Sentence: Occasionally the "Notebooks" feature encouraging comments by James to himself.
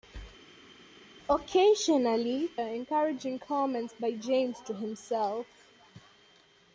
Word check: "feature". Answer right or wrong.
wrong